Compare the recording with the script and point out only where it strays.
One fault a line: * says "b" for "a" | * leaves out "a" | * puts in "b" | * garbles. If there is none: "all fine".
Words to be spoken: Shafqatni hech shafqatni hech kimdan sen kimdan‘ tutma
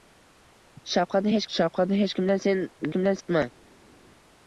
all fine